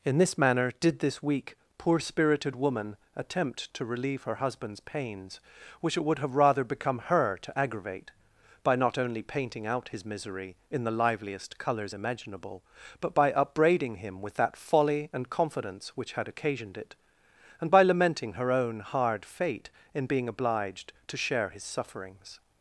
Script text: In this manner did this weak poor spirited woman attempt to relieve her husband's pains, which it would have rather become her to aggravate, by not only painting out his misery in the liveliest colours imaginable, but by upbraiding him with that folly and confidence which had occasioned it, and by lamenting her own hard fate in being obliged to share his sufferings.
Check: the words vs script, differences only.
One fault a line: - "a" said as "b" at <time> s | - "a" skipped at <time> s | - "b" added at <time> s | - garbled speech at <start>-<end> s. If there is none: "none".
none